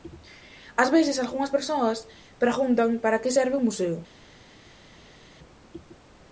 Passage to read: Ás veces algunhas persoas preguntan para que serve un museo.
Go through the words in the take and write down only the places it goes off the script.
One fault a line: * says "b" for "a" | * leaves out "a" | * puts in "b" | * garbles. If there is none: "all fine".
all fine